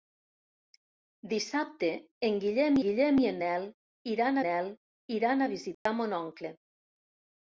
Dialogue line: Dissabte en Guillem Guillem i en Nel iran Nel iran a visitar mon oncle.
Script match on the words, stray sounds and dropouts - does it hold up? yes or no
no